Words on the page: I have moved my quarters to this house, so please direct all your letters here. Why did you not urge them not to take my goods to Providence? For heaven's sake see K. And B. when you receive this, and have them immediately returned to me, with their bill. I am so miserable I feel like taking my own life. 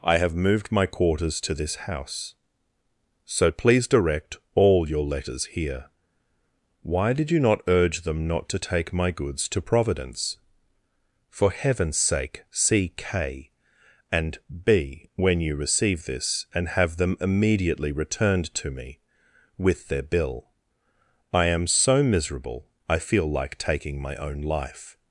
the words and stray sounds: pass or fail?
pass